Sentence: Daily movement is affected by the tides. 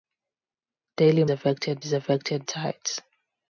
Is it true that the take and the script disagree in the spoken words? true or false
true